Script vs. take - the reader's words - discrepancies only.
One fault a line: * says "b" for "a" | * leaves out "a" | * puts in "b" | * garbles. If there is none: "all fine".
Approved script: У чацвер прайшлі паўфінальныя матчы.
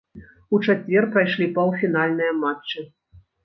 all fine